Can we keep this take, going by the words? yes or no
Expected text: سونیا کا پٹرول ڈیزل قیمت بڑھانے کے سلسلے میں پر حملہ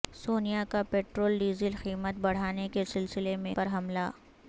yes